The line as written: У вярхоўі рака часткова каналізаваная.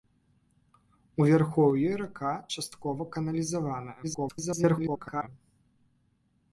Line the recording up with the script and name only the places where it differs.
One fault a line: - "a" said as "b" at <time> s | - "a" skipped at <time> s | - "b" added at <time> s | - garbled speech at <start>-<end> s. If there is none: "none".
- garbled speech at 4.0-5.3 s